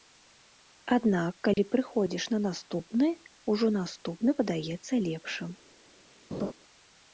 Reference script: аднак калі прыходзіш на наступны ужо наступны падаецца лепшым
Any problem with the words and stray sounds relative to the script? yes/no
yes